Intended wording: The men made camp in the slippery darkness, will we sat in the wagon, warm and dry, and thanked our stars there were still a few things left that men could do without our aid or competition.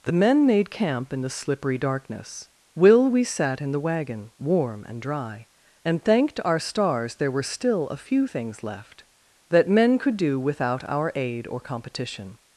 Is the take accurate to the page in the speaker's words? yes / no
yes